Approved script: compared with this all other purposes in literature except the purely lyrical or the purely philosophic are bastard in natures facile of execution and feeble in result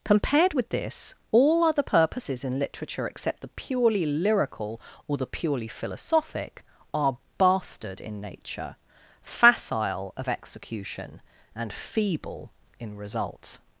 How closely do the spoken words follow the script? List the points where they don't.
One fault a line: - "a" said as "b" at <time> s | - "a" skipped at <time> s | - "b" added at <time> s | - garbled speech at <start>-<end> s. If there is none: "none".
- "natures" said as "nature" at 8.2 s